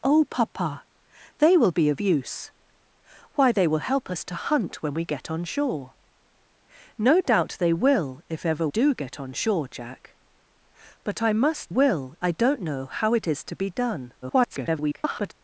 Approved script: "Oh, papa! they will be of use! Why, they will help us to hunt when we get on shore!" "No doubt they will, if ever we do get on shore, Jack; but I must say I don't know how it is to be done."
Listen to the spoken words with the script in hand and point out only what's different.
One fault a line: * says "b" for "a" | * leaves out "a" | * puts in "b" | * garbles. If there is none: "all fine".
* leaves out "we"
* says "will" for "say"
* garbles